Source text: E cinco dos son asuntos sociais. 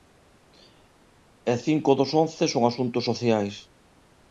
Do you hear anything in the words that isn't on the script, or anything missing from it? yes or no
yes